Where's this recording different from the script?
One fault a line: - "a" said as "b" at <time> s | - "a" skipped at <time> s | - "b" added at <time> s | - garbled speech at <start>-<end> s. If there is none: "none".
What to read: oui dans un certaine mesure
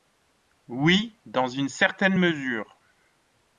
- "un" said as "une" at 1.4 s